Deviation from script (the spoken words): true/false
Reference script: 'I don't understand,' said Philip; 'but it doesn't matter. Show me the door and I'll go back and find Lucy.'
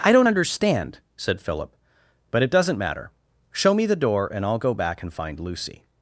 false